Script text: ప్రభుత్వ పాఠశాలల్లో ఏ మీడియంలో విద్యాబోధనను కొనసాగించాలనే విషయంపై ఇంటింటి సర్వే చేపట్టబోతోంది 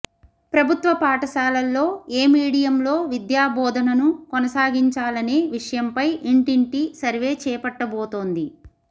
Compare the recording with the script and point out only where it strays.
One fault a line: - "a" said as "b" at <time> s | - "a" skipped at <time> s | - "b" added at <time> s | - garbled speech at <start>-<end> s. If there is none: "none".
none